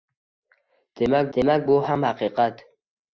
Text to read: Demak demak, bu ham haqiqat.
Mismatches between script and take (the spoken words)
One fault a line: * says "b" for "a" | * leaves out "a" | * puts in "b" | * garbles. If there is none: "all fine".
all fine